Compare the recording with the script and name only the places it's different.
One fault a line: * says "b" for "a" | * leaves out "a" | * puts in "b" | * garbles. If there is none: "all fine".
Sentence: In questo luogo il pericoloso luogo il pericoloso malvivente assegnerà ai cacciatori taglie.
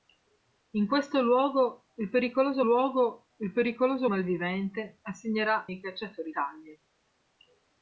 all fine